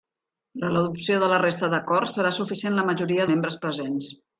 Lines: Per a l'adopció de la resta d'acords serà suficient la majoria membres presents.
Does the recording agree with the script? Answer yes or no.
yes